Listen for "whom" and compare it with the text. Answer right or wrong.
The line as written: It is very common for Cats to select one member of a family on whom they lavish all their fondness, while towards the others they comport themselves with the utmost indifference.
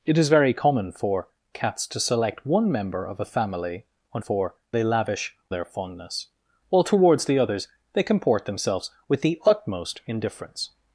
wrong